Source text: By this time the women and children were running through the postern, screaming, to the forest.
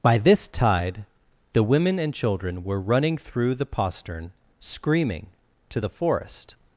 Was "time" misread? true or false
true